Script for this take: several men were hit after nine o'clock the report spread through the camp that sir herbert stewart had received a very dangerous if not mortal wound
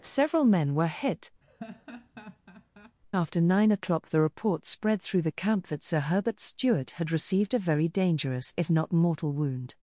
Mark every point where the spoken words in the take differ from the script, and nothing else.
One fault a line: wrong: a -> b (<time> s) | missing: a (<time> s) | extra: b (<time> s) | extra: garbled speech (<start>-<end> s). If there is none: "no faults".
no faults